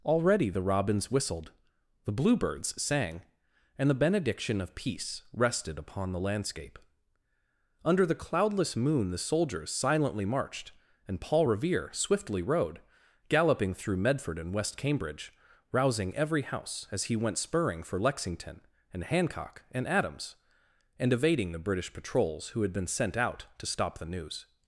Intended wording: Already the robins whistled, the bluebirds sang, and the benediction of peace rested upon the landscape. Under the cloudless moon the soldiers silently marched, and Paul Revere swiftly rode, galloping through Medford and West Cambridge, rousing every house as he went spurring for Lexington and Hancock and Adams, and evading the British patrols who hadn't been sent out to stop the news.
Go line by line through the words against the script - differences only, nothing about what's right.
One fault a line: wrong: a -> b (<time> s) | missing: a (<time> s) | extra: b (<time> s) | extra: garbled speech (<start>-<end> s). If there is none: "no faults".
wrong: hadn't -> had (22.6 s)